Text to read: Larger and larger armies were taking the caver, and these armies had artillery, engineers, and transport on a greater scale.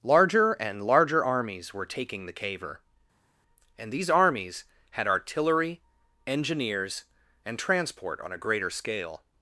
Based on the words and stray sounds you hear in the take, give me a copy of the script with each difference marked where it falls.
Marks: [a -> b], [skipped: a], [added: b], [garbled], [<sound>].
Larger and larger armies were taking the caver, and these armies had artillery, engineers, and transport on a greater scale.